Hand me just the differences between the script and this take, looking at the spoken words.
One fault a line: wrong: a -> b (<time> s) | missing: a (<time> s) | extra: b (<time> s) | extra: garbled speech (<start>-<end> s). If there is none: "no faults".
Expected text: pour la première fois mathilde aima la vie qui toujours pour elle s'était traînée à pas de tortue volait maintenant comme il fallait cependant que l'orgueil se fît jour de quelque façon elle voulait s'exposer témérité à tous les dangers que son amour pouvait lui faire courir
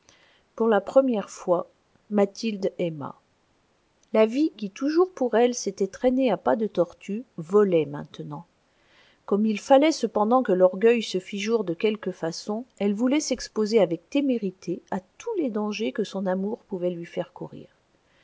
extra: avec (13.8 s)